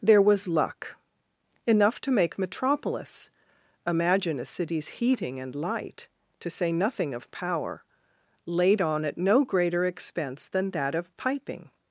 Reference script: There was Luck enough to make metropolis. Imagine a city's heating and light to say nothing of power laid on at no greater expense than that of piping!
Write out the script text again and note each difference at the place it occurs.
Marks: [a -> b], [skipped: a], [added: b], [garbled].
There was Luck enough to make metropolis. Imagine a city's heating and light to say nothing of power laid on at no greater expense than that of piping!